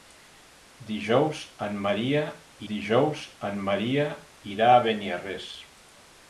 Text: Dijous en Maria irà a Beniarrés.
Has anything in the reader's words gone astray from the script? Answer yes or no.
yes